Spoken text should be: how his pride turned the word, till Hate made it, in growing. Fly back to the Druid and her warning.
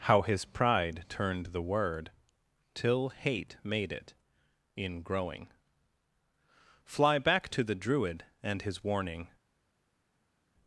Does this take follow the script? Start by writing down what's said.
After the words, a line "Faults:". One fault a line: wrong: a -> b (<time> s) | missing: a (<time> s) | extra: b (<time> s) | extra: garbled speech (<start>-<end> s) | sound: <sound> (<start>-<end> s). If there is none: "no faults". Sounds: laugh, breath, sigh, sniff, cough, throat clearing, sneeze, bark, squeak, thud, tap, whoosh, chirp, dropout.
how his pride turned the word, till Hate made it, in growing. Fly back to the Druid and his warning.
Faults:
wrong: her -> his (8.6 s)